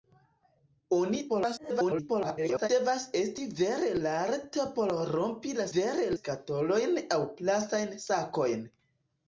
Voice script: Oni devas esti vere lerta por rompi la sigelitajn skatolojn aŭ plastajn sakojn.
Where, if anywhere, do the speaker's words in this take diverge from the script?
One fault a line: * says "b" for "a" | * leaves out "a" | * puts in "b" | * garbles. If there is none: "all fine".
* garbles
* says "vere" for "sigelitajn"